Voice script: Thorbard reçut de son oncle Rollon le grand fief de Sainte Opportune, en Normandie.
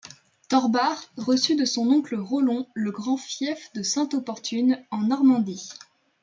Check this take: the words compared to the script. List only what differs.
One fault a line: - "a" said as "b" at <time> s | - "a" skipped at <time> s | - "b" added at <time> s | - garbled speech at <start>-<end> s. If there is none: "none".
none